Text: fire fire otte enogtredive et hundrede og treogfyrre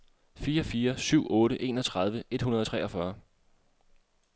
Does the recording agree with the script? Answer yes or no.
no